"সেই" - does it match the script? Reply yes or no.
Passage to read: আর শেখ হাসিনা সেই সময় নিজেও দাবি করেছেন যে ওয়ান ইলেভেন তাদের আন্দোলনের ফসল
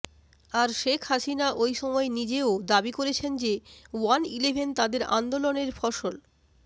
no